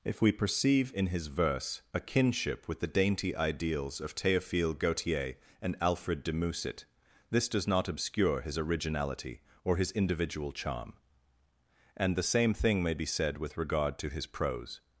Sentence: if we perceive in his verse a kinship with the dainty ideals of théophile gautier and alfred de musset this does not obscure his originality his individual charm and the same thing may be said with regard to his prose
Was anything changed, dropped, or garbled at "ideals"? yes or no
no